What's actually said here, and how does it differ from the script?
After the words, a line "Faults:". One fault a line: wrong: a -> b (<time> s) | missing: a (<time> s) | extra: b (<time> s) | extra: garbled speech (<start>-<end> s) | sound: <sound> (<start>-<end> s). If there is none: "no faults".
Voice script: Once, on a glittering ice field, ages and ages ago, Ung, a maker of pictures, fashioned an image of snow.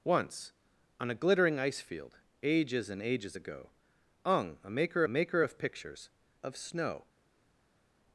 Once, on a glittering ice field, ages and ages ago, Ung, a maker maker of pictures, of snow.
Faults:
extra: maker (5.1 s)
missing: fashioned an image (6.1 s)